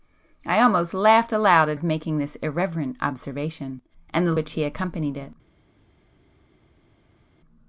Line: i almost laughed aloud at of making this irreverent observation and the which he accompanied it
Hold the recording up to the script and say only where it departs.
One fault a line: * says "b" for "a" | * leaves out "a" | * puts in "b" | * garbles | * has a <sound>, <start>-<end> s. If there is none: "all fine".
all fine